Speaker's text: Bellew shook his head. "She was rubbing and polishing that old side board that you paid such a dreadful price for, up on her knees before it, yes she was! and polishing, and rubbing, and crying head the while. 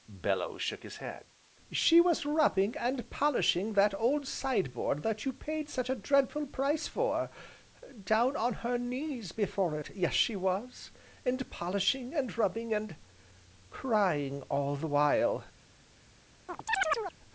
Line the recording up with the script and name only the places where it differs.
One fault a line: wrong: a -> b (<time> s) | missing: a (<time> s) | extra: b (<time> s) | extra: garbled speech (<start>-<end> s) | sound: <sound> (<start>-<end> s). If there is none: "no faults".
wrong: up -> down (8.0 s)
wrong: head -> all (14.4 s)
sound: chirp (16.5-17.2 s)